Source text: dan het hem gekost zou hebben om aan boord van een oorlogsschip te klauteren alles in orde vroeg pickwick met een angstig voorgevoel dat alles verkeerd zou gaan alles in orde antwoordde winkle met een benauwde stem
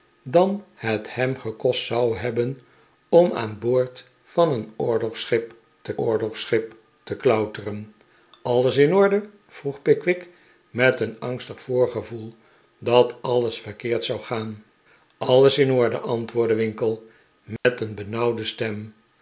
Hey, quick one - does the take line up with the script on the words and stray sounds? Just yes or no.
no